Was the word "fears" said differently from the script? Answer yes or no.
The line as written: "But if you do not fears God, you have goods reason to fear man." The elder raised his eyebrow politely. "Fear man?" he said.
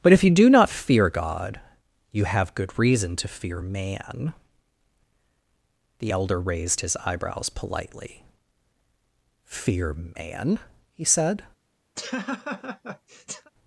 yes